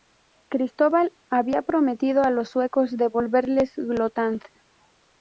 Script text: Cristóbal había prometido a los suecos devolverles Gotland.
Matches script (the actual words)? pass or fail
pass